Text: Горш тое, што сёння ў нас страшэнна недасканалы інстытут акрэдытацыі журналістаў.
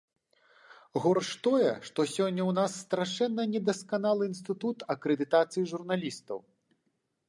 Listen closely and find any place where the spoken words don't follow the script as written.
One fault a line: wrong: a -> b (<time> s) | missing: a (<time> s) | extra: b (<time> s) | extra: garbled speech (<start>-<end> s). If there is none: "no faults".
no faults